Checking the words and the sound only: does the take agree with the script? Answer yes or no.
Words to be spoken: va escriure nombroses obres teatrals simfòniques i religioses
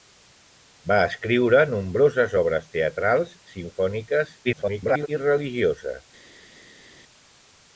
no